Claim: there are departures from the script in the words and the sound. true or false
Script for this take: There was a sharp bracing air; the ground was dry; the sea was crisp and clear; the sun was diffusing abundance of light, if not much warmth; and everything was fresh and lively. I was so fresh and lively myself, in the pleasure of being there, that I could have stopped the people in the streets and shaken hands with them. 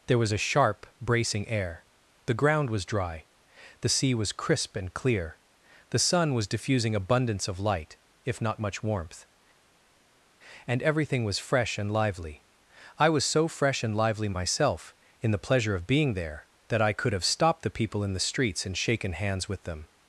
false